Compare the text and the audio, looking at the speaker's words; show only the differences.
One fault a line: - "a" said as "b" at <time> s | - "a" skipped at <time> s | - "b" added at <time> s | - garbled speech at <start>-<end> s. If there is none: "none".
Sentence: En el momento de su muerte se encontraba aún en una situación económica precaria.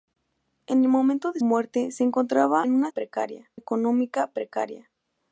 - "su" skipped at 1.4 s
- "aún" skipped at 2.6 s
- "situación" said as "precaria" at 2.9 s